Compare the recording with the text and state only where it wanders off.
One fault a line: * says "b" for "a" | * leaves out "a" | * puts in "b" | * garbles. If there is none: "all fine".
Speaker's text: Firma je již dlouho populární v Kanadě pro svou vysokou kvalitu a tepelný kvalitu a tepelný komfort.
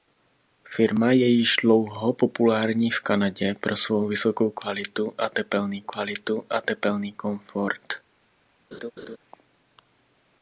all fine